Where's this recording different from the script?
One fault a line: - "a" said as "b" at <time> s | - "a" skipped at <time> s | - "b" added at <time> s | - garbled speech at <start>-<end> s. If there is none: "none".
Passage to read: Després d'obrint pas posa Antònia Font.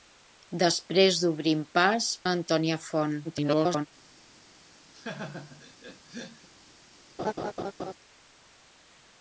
- "posa" skipped at 2.1 s
- garbled speech at 3.2-3.9 s